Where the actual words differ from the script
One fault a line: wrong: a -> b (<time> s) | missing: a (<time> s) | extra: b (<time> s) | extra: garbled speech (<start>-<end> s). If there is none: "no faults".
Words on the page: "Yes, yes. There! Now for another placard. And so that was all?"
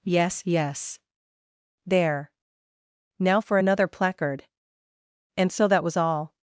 no faults